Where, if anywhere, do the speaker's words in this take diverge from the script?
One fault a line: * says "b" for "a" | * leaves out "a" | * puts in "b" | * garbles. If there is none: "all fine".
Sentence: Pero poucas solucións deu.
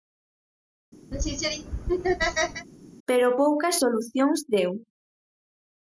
all fine